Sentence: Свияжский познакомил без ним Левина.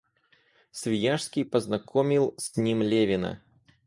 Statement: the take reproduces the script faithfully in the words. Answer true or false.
false